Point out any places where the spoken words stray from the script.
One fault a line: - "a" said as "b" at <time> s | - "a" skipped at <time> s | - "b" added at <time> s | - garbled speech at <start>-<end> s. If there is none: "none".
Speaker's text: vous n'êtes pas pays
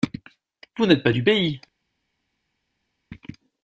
- "du" added at 1.1 s